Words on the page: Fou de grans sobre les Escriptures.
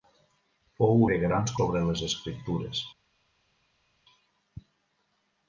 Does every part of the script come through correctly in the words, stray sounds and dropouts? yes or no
yes